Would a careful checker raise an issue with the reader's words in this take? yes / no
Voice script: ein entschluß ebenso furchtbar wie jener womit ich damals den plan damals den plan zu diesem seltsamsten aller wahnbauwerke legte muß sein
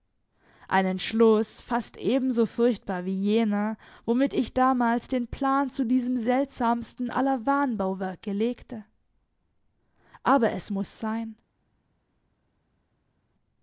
yes